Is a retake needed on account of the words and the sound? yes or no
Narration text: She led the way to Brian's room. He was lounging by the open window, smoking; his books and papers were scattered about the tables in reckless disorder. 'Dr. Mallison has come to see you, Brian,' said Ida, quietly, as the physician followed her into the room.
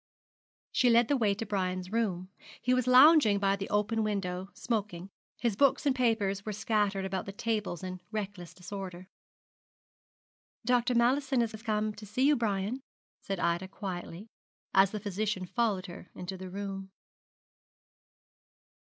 yes